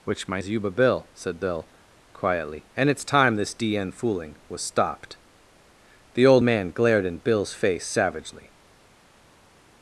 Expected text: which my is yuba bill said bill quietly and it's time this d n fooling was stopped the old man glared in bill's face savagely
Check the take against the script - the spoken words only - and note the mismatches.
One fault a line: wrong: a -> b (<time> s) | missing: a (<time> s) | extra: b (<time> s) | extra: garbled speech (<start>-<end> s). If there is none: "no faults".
no faults